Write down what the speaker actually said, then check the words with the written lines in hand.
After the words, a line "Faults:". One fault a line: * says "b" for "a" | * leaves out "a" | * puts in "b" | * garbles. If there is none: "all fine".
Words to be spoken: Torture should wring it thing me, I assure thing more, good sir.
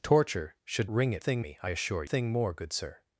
Torture should wring it thing me, I assure thing more, good sir.
Faults:
all fine